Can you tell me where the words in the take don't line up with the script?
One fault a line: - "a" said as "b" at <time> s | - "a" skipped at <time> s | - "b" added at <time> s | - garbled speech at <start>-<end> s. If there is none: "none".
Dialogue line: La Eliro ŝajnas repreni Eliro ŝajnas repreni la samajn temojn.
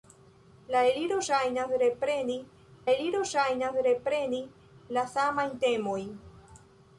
none